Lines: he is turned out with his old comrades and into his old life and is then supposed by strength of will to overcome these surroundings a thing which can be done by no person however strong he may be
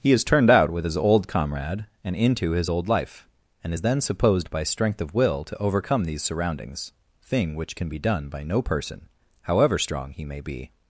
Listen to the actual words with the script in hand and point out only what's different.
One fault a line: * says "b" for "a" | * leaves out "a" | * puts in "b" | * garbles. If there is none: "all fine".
* says "comrade" for "comrades"
* leaves out "a"